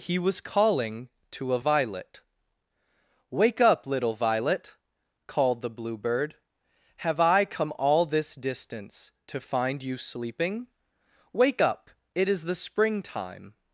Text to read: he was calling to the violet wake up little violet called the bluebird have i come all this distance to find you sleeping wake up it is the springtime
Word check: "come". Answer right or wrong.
right